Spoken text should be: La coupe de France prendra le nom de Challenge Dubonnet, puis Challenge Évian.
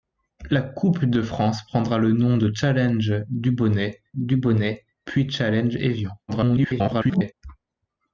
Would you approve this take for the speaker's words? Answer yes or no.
no